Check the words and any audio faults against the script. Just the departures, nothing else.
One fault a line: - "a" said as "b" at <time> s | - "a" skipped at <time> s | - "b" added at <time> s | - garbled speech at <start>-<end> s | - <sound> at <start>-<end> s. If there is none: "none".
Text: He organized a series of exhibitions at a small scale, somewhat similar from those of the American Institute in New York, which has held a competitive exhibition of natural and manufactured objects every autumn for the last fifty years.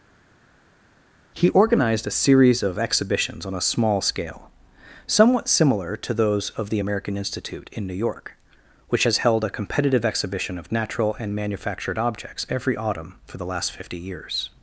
- "at" said as "on" at 3.4 s
- "from" said as "to" at 6.0 s